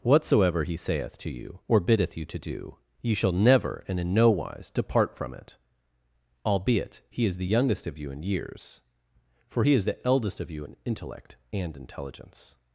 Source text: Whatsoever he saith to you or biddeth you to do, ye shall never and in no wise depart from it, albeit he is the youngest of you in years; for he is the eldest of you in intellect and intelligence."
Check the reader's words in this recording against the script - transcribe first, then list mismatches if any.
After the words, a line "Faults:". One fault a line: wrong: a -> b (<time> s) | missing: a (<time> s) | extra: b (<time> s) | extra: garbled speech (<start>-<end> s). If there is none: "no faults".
Whatsoever he saith to you or biddeth you to do, ye shall never and in no wise depart from it, albeit he is the youngest of you in years; for he is the eldest of you in intellect and intelligence."
Faults:
no faults